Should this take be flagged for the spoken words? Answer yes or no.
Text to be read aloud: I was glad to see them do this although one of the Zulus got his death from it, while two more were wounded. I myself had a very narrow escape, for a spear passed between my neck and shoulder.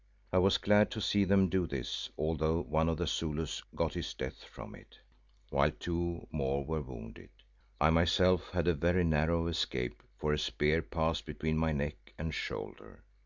no